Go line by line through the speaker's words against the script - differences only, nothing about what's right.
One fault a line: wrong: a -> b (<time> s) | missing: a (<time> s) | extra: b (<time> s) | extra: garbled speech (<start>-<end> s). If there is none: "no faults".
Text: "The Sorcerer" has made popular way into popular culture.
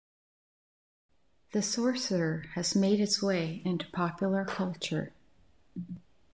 wrong: popular -> its (3.0 s)